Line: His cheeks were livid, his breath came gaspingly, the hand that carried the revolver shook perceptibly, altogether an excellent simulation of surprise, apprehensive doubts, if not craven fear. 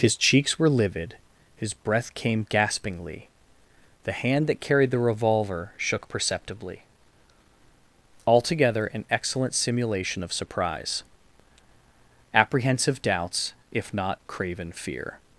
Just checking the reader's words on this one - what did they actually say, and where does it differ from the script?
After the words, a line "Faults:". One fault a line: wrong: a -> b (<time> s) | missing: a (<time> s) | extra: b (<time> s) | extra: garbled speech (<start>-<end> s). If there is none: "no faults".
His cheeks were livid, his breath came gaspingly, the hand that carried the revolver shook perceptibly, altogether an excellent simulation of surprise, apprehensive doubts, if not craven fear.
Faults:
no faults